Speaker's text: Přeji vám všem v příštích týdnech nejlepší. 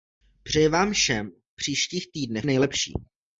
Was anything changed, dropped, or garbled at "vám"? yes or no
no